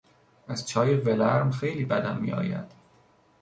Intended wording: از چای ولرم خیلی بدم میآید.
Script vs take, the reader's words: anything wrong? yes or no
no